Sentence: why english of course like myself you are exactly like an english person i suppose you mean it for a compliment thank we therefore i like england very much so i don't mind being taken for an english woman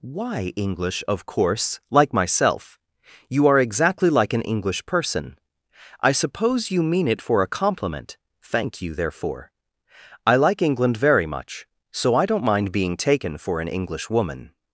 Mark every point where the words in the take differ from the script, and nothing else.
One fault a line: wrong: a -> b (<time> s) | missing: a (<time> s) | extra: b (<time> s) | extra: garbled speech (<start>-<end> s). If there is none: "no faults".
wrong: we -> you (8.8 s)